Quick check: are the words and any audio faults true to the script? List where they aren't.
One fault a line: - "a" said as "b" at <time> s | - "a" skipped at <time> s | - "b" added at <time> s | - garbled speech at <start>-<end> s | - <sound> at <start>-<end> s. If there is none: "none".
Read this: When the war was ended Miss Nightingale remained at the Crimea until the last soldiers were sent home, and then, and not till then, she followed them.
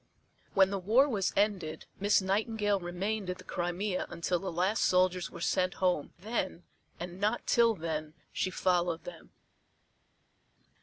- "and" skipped at 6.2 s